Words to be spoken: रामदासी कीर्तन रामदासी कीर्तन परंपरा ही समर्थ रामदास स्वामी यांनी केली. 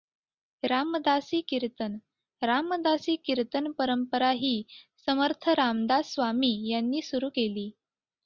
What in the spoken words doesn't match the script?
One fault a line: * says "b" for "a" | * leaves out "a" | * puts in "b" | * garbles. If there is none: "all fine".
* puts in "सुरू"